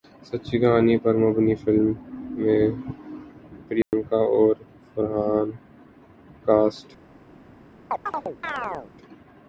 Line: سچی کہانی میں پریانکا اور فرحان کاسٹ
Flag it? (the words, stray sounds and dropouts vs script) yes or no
yes